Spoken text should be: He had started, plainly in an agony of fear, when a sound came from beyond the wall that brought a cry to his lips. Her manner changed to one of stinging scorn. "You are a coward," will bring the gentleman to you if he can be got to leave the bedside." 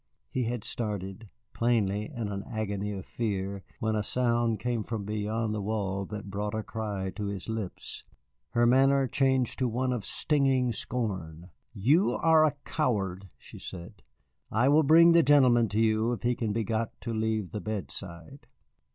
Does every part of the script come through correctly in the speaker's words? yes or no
no